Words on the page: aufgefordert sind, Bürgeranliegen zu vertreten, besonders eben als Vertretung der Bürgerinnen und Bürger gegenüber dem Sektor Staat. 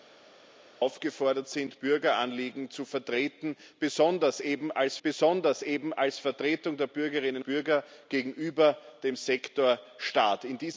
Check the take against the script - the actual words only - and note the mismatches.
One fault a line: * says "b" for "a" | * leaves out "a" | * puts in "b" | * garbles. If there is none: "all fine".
* puts in "besonders eben als"
* leaves out "und"